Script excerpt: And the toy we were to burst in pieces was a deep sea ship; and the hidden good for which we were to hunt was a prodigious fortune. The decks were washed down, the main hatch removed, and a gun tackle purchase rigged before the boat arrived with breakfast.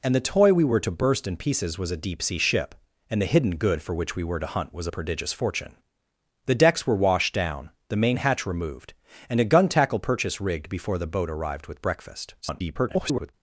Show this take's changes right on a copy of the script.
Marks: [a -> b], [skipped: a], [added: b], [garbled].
And the toy we were to burst in pieces was a deep sea ship; and the hidden good for which we were to hunt was a prodigious fortune. The decks were washed down, the main hatch removed, and a gun tackle purchase rigged before the boat arrived with breakfast. [garbled]